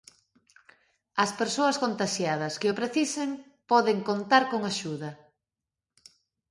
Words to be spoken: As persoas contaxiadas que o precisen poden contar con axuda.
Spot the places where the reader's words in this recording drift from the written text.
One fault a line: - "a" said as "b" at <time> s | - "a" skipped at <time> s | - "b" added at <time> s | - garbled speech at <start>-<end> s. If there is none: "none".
none